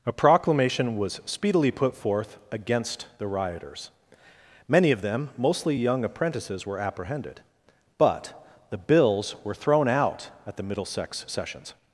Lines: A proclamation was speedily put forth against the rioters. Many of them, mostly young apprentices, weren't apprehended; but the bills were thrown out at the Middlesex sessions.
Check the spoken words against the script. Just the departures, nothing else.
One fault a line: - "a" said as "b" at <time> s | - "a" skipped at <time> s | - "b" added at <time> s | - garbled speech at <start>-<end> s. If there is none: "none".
- "weren't" said as "were" at 6.7 s